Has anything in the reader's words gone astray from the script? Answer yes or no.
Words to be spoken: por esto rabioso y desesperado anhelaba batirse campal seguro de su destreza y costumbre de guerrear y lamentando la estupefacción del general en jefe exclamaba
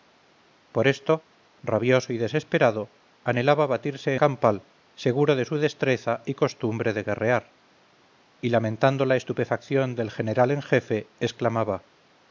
no